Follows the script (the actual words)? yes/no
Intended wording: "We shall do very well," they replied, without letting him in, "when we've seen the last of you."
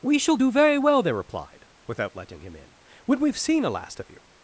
no